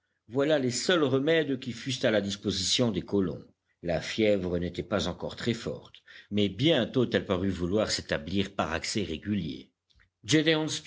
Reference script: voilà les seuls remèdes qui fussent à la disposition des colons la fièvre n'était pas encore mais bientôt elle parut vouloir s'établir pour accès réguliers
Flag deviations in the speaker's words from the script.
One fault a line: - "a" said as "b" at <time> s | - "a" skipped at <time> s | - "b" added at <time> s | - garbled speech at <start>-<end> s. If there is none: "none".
- "très forte" added at 5.3 s
- "pour" said as "par" at 8.5 s